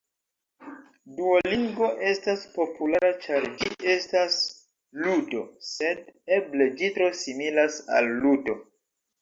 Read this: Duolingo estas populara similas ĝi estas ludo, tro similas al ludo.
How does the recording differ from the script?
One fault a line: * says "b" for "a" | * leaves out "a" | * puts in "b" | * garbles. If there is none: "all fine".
* says "ĉar" for "similas"
* puts in "sed eble ĝi"